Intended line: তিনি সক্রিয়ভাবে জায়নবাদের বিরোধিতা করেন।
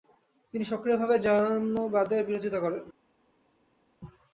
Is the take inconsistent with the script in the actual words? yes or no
no